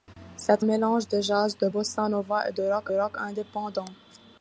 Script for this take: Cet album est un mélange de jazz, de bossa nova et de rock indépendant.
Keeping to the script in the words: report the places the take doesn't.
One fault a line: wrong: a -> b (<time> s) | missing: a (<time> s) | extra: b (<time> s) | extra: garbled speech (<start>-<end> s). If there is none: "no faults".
missing: album est un (0.7 s)
extra: rock (2.9 s)